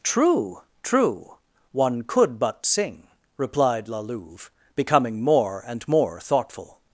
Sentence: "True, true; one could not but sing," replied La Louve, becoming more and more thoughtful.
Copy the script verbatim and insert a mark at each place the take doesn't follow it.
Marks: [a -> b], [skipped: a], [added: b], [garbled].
"True, true; one could [skipped: not] but sing," replied La Louve, becoming more and more thoughtful.